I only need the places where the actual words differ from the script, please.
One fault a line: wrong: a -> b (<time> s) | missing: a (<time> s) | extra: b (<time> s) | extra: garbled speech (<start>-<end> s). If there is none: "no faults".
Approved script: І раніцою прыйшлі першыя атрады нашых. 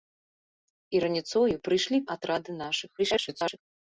missing: першыя (2.0 s)
extra: garbled speech (3.0-3.6 s)